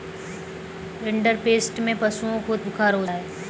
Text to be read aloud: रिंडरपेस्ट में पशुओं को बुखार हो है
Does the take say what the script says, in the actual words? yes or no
yes